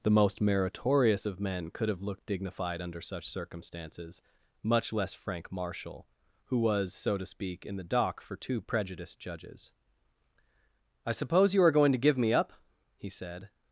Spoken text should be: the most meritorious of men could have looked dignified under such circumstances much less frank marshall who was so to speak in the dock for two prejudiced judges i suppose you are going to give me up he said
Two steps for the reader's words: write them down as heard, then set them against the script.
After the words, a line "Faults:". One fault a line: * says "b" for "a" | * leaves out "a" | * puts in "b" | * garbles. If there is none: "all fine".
the most meritorious of men could have looked dignified under such circumstances much less frank marshall who was so to speak in the dock for two prejudiced judges i suppose you are going to give me up he said
Faults:
all fine